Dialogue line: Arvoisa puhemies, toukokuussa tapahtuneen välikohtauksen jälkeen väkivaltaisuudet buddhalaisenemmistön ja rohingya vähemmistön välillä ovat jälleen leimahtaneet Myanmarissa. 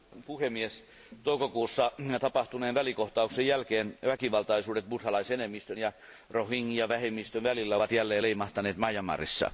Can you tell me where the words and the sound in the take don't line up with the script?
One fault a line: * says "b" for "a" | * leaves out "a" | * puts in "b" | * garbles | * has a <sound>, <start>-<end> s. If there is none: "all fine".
all fine